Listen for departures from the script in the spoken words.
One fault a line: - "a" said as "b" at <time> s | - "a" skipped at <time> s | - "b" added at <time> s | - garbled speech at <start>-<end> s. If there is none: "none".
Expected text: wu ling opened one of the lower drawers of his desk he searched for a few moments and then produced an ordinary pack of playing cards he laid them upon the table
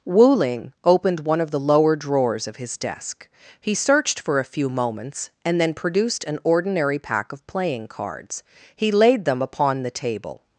none